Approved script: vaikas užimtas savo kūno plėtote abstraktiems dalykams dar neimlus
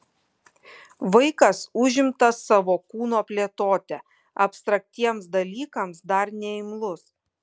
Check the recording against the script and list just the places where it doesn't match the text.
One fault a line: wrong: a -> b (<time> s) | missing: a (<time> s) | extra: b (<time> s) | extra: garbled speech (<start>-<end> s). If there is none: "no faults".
no faults